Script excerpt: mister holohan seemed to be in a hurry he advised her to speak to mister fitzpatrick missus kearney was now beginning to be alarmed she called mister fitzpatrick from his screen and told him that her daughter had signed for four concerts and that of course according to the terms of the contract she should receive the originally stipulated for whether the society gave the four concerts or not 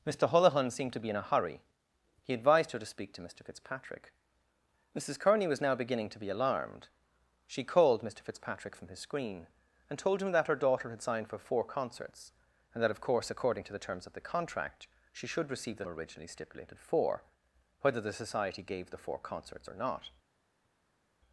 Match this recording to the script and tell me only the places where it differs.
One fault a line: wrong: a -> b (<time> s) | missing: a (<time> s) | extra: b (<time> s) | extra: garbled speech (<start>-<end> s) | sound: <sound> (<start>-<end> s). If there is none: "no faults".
no faults